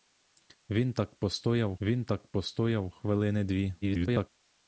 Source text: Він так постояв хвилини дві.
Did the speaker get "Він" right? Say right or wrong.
right